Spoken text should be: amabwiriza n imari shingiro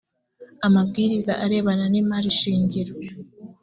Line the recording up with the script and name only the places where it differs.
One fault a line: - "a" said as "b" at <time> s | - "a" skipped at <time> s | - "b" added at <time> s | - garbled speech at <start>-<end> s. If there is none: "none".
- "arebana" added at 1.4 s